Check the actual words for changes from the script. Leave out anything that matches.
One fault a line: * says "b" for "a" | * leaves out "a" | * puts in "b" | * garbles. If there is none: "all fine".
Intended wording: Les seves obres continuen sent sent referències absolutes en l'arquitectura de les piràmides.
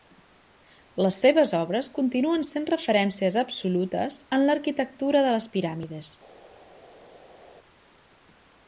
* leaves out "sent"